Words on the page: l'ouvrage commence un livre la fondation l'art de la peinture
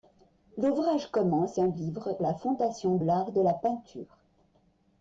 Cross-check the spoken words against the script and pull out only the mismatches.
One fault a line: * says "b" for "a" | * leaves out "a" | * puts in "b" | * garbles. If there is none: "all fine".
all fine